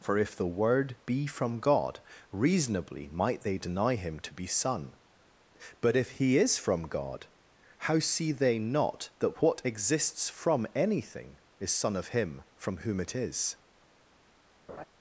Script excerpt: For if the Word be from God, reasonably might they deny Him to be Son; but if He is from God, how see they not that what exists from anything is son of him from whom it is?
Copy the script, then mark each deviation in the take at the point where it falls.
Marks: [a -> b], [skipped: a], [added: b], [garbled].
For if the Word be from God, reasonably might they deny Him to be Son; but if He is from God, how see they not that what exists from anything is son of him from whom it is?